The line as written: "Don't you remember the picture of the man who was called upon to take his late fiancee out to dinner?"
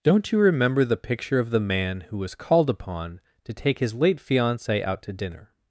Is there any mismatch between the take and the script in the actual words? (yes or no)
no